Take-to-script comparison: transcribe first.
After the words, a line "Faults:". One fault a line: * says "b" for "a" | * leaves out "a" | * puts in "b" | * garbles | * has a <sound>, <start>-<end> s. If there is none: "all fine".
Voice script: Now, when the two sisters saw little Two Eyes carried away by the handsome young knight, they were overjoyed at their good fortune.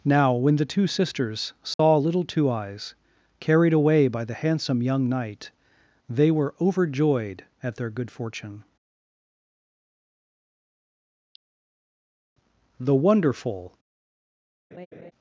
Now, when the two sisters saw little Two Eyes carried away by the handsome young knight, they were overjoyed at their good fortune. "The wonderful
Faults:
* has a dropout, 1.7-1.8 s
* puts in "The wonderful"
* has a laugh, 14.7-15.1 s